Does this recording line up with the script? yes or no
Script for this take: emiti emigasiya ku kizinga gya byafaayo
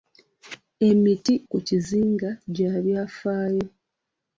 no